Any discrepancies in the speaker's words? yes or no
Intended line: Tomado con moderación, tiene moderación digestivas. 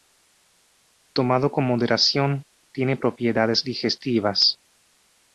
yes